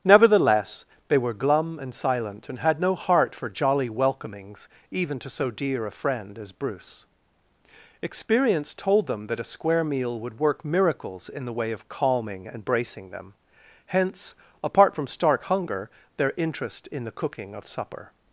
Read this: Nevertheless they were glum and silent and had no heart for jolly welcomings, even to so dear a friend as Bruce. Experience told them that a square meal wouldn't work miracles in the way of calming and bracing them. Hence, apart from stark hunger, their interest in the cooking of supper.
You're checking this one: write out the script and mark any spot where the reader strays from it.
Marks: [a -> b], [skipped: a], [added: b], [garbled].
Nevertheless they were glum and silent and had no heart for jolly welcomings, even to so dear a friend as Bruce. Experience told them that a square meal [wouldn't -> would] work miracles in the way of calming and bracing them. Hence, apart from stark hunger, their interest in the cooking of supper.